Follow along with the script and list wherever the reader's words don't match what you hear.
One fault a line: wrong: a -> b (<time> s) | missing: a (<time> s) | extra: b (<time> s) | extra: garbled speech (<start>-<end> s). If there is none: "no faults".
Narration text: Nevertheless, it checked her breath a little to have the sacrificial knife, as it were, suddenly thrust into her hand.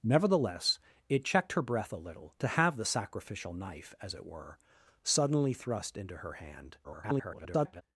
extra: garbled speech (6.8-7.8 s)